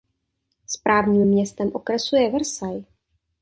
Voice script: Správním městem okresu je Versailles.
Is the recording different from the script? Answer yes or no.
no